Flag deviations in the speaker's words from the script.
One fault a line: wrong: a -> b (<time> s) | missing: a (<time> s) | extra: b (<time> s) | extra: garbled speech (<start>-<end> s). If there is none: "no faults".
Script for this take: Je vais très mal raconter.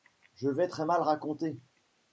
no faults